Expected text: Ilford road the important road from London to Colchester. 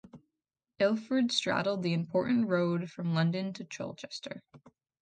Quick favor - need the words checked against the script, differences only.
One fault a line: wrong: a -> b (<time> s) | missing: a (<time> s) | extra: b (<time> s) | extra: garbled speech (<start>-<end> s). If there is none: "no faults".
wrong: road -> straddled (1.3 s)